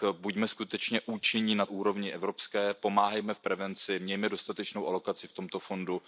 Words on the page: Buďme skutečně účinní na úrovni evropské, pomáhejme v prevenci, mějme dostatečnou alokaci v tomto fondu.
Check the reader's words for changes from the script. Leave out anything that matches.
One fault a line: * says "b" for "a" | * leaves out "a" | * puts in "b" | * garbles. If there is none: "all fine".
all fine